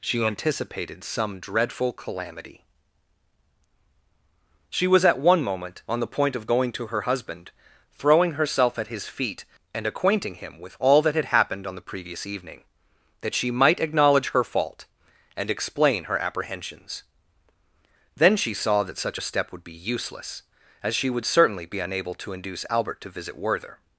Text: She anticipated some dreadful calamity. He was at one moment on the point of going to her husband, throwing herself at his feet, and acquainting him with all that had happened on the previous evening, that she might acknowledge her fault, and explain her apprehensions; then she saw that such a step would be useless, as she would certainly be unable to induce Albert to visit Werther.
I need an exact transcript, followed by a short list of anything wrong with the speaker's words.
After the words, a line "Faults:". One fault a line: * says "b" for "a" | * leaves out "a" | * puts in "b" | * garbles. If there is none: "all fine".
She anticipated some dreadful calamity. She was at one moment on the point of going to her husband, throwing herself at his feet, and acquainting him with all that had happened on the previous evening, that she might acknowledge her fault, and explain her apprehensions; then she saw that such a step would be useless, as she would certainly be unable to induce Albert to visit Werther.
Faults:
* says "She" for "He"